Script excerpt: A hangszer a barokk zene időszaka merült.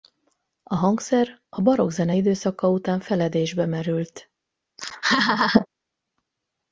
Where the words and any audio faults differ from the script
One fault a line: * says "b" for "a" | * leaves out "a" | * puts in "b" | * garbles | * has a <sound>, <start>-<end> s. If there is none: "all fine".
* puts in "után feledésbe"
* has a laugh, 4.8-5.7 s